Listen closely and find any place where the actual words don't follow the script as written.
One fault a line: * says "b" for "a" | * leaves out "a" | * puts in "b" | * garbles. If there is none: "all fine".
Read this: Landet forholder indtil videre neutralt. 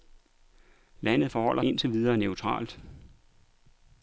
all fine